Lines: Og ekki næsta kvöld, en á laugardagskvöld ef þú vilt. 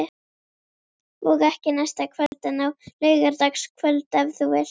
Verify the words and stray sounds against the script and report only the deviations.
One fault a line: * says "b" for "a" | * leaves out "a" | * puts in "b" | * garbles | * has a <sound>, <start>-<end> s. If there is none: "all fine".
* has a dropout, 2.3-2.3 s